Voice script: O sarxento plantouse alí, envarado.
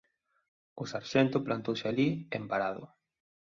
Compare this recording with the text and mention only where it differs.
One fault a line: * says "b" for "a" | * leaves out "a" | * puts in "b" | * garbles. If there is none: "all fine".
all fine